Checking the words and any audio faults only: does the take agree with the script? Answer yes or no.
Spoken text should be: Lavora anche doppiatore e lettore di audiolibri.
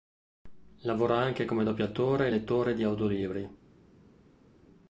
no